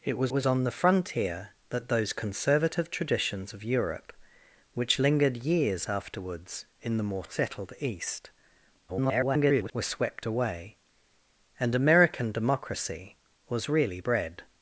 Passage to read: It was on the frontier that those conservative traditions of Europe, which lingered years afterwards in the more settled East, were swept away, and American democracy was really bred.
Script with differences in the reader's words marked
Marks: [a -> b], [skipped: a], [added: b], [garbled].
It was [added: was] on the frontier that those conservative traditions of Europe, which lingered years afterwards in the more settled East, [garbled] were swept away, and American democracy was really bred.